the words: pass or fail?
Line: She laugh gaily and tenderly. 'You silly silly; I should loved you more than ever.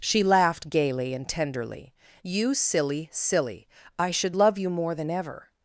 fail